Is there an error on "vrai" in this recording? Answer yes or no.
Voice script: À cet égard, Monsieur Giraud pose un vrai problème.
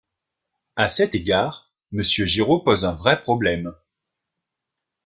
no